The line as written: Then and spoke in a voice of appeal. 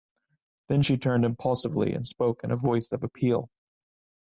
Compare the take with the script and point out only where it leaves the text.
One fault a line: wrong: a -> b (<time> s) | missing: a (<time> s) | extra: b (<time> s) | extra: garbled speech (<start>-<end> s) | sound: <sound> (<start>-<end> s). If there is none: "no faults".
extra: she turned impulsively (0.8 s)